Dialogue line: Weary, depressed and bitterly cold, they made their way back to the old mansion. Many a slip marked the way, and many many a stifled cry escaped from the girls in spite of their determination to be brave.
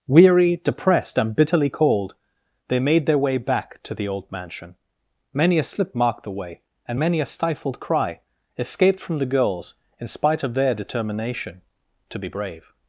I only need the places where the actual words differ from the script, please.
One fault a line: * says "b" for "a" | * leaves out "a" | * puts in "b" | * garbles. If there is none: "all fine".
* leaves out "many"